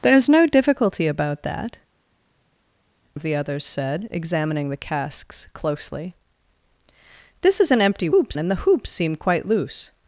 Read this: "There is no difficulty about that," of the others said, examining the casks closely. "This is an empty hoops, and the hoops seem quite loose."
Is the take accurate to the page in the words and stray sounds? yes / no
yes